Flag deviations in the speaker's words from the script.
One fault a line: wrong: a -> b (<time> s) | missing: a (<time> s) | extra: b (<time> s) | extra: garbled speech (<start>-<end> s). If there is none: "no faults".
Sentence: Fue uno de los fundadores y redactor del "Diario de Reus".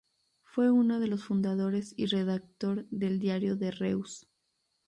no faults